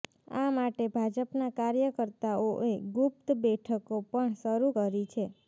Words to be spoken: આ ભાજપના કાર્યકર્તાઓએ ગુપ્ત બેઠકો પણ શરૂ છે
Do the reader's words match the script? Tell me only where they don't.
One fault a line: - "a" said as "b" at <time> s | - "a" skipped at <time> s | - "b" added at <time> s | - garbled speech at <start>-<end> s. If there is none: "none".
- "માટે" added at 0.5 s
- "કરી" added at 4.7 s